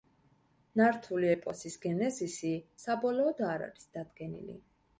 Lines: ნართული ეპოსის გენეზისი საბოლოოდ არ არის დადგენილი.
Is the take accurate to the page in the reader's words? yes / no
yes